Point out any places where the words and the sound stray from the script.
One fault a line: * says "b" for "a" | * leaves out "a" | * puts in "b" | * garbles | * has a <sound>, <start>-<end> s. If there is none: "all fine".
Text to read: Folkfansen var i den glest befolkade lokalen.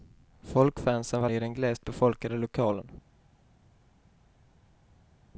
all fine